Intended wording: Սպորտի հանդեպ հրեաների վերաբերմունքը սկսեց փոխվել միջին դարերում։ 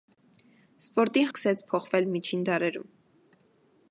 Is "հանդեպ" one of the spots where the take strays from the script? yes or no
yes